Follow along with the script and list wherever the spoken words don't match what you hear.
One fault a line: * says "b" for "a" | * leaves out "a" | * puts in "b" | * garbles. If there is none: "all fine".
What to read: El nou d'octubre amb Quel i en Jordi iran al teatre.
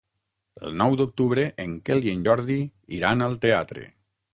* says "en" for "amb"